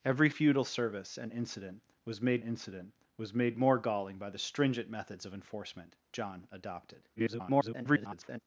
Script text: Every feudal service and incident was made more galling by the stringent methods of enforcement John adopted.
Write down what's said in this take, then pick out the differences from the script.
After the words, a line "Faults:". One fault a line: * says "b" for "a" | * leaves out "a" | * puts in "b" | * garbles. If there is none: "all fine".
Every feudal service and incident was made incident was made more galling by the stringent methods of enforcement John adopted. [garbled]
Faults:
* puts in "incident was made"
* garbles